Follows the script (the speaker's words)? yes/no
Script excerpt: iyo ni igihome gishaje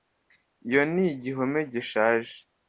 yes